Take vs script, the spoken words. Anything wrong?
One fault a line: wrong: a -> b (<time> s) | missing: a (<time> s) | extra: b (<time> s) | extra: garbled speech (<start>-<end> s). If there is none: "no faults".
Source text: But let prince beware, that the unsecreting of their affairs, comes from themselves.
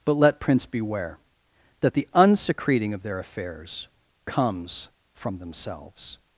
no faults